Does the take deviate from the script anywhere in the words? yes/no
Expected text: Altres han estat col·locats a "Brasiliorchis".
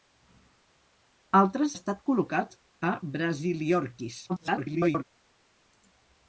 yes